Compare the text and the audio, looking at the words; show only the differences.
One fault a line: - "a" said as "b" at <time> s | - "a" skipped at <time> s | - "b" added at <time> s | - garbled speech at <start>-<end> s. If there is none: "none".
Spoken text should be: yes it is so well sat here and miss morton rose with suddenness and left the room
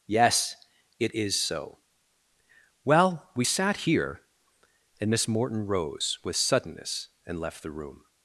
- "we" added at 3.4 s